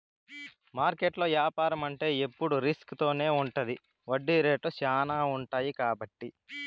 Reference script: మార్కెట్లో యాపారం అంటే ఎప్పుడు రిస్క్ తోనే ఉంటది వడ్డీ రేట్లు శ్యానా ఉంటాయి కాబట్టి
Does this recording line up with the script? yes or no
yes